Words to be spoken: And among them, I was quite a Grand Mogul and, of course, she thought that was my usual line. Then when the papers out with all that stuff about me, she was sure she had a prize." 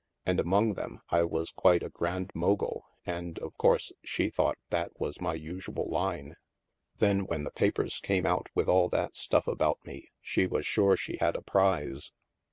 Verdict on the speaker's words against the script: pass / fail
fail